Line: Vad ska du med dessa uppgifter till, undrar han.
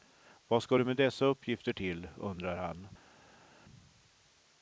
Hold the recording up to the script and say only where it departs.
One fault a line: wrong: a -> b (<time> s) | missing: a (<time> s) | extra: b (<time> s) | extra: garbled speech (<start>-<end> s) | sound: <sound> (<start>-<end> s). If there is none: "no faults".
no faults